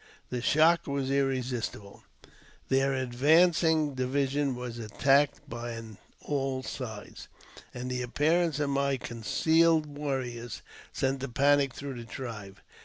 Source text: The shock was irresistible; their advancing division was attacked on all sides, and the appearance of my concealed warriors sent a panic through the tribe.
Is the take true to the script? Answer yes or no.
yes